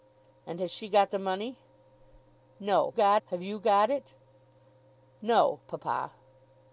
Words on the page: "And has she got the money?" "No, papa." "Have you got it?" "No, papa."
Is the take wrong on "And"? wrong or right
right